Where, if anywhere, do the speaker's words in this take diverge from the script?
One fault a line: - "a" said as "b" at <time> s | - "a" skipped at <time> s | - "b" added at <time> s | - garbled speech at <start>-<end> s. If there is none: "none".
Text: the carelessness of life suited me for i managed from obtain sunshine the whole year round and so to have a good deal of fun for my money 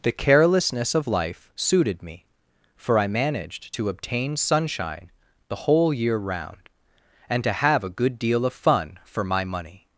- "from" said as "to" at 3.7 s
- "so" skipped at 7.4 s